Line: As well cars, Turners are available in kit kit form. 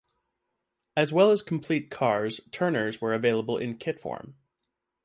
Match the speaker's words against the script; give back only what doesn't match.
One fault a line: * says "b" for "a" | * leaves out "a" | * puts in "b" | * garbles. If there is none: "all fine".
* puts in "as complete"
* says "were" for "are"
* leaves out "kit"